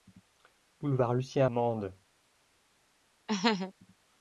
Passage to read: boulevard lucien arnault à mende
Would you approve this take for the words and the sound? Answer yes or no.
no